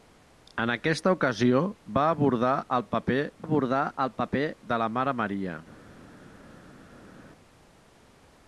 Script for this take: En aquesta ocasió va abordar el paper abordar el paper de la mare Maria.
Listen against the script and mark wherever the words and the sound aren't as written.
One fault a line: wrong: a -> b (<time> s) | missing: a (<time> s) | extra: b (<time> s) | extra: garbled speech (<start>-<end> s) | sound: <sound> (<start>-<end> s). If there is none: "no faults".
no faults